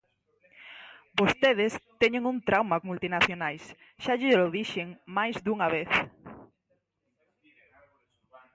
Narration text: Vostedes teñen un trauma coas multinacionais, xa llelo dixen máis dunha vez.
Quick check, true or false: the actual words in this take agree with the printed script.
false